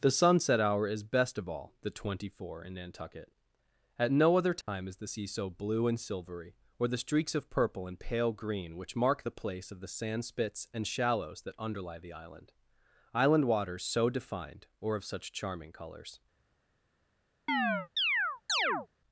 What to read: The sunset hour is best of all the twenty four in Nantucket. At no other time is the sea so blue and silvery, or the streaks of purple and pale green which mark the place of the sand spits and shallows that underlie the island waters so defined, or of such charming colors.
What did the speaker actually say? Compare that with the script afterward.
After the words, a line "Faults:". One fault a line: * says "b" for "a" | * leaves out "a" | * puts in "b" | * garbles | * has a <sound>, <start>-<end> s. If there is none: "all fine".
The sunset hour is best of all the twenty four in Nantucket. At no other time is the sea so blue and silvery, or the streaks of purple and pale green which mark the place of the sand spits and shallows that underlie the island island waters so defined, or of such charming colors.
Faults:
* has a dropout, 4.6-4.7 s
* puts in "island"
* has a chirp, 17.5-18.9 s